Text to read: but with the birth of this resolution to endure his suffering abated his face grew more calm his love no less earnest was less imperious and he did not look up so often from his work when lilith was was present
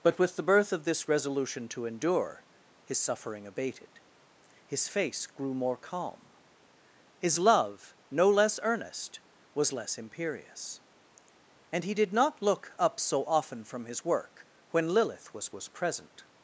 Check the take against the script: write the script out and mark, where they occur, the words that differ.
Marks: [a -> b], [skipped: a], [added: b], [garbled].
but with the birth of this resolution to endure his suffering abated his face grew more calm his love no less earnest was less imperious and he did not look up so often from his work when lilith was was present